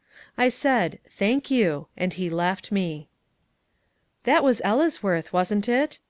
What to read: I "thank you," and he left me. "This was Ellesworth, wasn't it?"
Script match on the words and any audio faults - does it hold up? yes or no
no